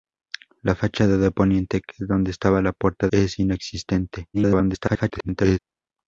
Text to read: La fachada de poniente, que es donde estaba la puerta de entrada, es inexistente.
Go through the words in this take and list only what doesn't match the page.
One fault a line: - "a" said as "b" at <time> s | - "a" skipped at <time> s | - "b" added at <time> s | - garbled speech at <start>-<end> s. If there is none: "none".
- "de entrada" skipped at 3.1 s
- garbled speech at 4.3-5.6 s